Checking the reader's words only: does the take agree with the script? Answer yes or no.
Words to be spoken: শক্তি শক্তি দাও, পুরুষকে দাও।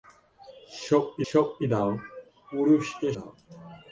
yes